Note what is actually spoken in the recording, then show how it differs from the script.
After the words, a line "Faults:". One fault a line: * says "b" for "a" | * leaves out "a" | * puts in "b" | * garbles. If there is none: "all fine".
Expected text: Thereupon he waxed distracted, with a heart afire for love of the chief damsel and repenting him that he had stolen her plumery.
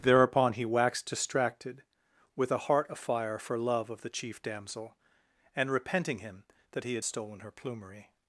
Thereupon he waxed distracted, with a heart afire for love of the chief damsel and repenting him that he had stolen her plumery.
Faults:
all fine